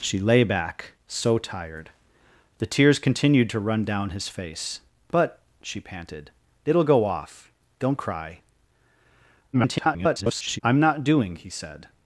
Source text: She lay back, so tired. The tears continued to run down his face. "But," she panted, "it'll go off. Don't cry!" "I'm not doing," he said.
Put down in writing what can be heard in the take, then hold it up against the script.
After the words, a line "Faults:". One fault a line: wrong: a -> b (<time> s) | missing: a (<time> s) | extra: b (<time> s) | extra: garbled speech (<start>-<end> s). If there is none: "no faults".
She lay back, so tired. The tears continued to run down his face. "But," she panted, "it'll go off. Don't cry!" [garbled] "I'm not doing," he said.
Faults:
extra: garbled speech (9.5-10.6 s)